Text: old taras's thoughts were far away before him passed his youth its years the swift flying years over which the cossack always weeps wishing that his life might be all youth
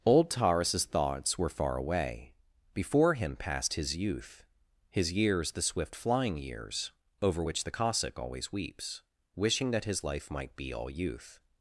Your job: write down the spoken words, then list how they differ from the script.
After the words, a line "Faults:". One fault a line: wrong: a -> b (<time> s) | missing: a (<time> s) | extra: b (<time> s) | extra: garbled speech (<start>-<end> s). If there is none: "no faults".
old taras's thoughts were far away before him passed his youth his years the swift flying years over which the cossack always weeps wishing that his life might be all youth
Faults:
wrong: its -> his (4.9 s)